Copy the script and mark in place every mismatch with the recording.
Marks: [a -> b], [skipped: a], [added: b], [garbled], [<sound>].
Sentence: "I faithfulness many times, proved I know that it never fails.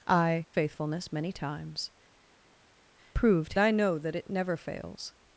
"I faithfulness many times, proved I know that it never fails.